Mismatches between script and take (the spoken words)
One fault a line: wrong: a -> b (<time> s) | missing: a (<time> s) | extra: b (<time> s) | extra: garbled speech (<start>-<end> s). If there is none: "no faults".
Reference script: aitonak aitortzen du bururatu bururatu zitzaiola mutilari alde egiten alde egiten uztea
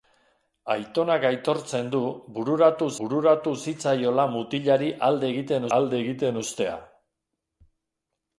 no faults